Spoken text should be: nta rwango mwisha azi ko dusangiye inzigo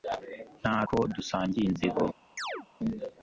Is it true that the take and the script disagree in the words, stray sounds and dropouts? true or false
true